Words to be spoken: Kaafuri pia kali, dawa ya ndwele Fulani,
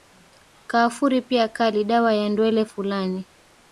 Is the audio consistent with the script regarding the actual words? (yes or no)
yes